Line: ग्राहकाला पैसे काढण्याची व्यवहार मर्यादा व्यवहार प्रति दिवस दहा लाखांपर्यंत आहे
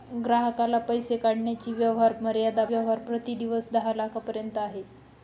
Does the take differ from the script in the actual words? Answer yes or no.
no